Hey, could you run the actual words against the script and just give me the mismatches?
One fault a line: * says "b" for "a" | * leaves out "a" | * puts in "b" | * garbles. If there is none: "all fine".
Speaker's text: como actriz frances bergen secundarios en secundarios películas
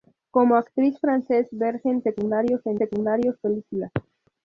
all fine